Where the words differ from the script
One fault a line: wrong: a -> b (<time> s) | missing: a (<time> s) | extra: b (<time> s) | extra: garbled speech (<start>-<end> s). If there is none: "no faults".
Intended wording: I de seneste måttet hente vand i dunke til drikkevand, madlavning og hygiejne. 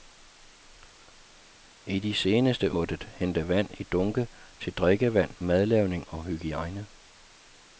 no faults